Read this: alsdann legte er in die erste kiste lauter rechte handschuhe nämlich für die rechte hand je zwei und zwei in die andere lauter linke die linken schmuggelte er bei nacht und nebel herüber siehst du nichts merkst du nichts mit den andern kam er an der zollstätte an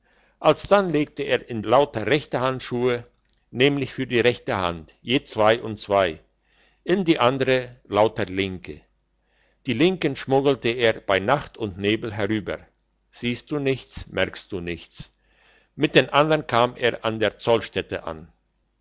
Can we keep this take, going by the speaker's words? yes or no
no